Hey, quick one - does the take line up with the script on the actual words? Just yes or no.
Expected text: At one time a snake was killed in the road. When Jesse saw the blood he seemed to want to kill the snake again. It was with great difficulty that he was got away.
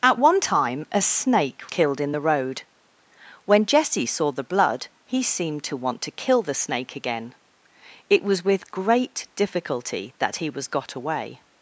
no